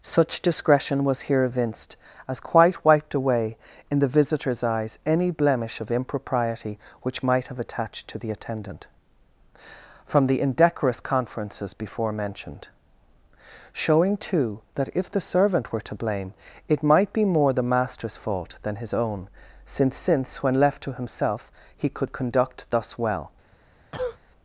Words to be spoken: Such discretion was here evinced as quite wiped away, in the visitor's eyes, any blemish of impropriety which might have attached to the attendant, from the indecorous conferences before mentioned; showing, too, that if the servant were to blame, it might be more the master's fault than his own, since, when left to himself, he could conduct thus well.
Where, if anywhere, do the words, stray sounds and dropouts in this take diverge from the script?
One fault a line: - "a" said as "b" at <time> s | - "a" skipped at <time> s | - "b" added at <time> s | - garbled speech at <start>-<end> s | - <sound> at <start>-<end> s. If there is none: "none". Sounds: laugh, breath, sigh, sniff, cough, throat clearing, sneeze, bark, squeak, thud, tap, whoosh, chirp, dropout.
- "since" added at 19.9 s
- cough at 23.9-24.2 s